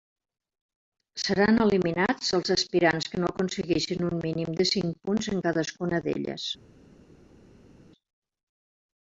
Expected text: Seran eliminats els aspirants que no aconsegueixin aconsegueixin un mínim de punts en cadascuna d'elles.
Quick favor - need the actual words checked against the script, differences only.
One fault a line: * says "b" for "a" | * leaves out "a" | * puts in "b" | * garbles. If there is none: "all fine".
* leaves out "aconsegueixin"
* puts in "cinc"